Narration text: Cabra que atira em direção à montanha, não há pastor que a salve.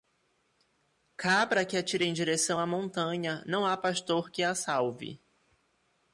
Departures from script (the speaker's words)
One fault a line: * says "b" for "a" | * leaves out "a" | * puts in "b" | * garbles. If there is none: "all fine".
all fine